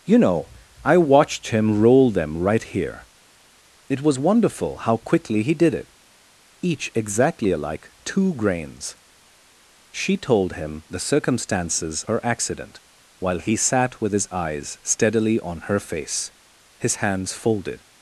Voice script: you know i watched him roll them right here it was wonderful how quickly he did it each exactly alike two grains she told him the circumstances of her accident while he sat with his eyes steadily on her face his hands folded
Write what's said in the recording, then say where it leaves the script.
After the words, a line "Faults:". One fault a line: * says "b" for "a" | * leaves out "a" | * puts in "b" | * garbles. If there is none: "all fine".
you know i watched him roll them right here it was wonderful how quickly he did it each exactly alike two grains she told him the circumstances her accident while he sat with his eyes steadily on her face his hands folded
Faults:
* leaves out "of"